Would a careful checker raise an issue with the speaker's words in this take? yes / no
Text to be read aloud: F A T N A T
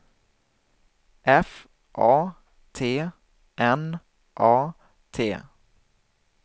no